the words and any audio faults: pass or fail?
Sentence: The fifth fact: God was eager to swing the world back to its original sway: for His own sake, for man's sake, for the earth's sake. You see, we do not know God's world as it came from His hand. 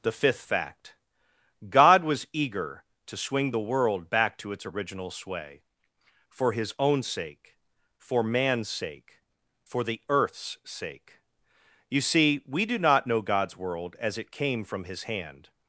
pass